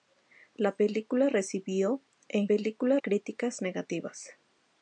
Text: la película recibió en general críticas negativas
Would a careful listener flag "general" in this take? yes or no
yes